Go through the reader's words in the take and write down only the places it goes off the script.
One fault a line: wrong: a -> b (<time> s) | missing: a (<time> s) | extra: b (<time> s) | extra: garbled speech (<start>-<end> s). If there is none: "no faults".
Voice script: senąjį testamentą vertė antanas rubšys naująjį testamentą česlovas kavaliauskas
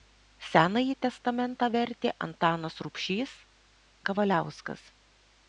missing: naująjį testamentą česlovas (3.4 s)